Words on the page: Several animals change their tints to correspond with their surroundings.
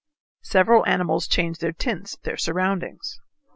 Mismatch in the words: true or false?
true